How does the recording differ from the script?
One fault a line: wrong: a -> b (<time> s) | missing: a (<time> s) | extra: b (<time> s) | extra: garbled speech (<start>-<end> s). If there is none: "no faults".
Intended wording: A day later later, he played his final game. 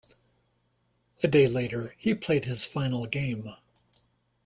missing: later (1.9 s)